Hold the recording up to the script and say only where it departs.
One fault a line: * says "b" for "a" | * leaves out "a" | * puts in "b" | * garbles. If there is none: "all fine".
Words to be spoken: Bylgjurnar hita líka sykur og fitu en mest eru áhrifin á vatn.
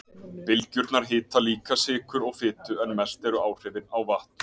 all fine